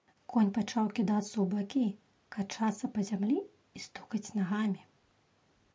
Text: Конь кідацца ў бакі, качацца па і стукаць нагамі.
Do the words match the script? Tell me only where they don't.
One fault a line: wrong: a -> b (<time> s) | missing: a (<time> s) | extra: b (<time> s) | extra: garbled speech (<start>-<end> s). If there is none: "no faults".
extra: пачаў (0.6 s)
extra: зямлі (3.1 s)